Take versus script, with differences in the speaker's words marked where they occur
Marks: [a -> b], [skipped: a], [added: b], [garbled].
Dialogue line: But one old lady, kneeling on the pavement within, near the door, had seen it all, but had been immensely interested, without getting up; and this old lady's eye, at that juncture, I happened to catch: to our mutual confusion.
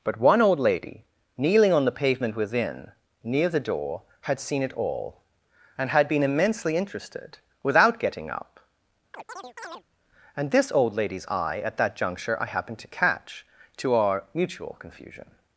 But one old lady, kneeling on the pavement within, near the door, had seen it all, [but -> and] had been immensely interested, without getting up; and this old lady's eye, at that juncture, I happened to catch: to our mutual confusion.